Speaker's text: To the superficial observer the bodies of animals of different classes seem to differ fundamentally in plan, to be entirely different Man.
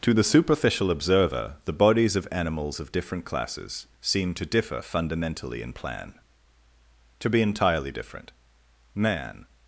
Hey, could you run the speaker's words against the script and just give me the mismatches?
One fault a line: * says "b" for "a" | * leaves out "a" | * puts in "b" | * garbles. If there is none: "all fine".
all fine